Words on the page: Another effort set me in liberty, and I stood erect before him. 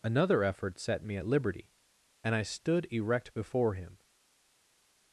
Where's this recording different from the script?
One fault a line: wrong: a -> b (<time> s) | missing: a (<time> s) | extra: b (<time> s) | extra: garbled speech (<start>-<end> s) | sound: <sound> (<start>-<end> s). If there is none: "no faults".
wrong: in -> at (1.1 s)